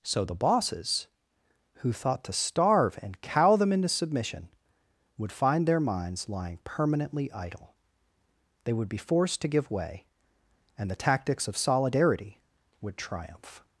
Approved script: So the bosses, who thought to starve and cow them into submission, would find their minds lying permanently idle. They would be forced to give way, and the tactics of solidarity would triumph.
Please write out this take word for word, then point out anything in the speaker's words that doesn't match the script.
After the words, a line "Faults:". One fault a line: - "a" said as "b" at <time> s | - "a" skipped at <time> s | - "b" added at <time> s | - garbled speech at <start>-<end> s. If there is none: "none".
So the bosses, who thought to starve and cow them into submission, would find their minds lying permanently idle. They would be forced to give way, and the tactics of solidarity would triumph.
Faults:
none